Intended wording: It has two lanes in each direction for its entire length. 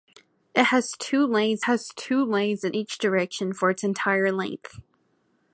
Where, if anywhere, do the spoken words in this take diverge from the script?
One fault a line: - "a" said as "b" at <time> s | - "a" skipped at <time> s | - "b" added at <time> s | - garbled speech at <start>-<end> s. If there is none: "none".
- "has two lanes" added at 1.6 s